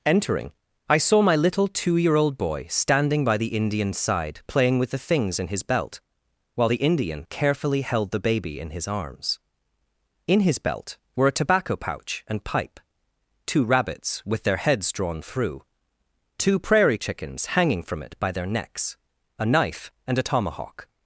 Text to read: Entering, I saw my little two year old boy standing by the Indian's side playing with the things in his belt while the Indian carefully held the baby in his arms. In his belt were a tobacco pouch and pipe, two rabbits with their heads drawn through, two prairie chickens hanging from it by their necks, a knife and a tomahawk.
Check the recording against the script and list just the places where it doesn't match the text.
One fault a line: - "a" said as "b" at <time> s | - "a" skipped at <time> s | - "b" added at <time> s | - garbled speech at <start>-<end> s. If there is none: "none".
none